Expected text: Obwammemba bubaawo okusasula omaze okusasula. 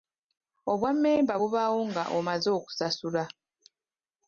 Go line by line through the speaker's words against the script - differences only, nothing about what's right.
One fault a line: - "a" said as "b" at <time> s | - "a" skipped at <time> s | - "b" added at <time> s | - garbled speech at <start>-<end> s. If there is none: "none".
- "okusasula" said as "nga" at 1.9 s